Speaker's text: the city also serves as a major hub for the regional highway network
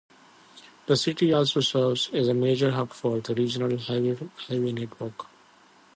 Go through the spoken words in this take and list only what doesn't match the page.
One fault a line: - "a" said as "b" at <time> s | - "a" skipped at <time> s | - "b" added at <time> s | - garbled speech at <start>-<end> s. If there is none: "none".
none